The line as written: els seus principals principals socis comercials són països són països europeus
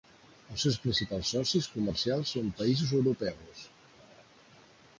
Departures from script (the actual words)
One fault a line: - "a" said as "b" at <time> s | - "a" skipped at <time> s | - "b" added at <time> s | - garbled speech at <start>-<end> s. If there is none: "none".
- "principals" skipped at 1.3 s
- "són països" skipped at 3.0 s